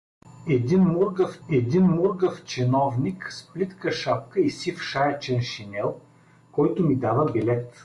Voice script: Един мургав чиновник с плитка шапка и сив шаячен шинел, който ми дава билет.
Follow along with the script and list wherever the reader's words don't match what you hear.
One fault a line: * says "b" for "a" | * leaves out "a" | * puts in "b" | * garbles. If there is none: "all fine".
* puts in "един мургав"